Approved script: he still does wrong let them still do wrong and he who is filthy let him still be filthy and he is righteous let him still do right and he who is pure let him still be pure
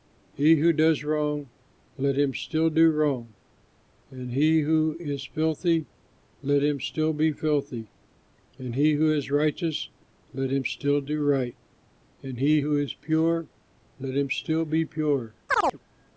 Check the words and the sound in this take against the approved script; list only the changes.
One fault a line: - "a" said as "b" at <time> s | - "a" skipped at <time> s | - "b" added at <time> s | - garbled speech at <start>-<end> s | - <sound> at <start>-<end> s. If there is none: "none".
- "still" said as "who" at 0.6 s
- "them" said as "him" at 2.2 s
- "who" added at 8.9 s
- chirp at 15.5-15.8 s